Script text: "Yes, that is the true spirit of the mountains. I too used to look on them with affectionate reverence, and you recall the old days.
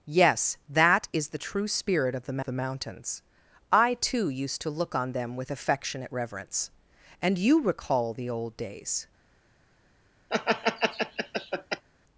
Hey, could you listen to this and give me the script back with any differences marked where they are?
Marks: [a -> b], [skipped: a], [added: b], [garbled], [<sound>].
"Yes, that is the true spirit of the [added: the] mountains. I too used to look on them with affectionate reverence, and you recall the old days. [laugh]